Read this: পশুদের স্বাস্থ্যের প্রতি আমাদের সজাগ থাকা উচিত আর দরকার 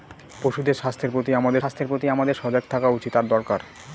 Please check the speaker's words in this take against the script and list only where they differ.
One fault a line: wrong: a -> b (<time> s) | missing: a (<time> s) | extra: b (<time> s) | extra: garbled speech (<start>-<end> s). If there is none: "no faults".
extra: স্বাস্থ্যের প্রতি আমাদের (1.6 s)